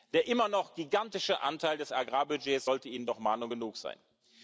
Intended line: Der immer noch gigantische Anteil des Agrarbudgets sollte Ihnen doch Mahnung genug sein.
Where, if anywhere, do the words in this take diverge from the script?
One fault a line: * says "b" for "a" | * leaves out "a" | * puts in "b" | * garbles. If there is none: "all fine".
all fine